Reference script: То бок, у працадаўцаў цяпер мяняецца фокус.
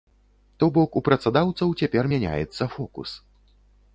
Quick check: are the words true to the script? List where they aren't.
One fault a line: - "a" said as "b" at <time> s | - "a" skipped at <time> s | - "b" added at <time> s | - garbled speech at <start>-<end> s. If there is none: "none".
none